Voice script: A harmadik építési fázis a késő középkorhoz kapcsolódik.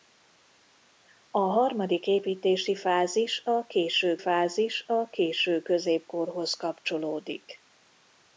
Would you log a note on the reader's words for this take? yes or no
yes